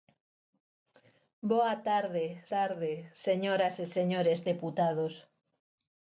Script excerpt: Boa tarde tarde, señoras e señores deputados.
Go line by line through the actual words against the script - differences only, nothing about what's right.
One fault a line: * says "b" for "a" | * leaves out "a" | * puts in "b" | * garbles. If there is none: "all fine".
all fine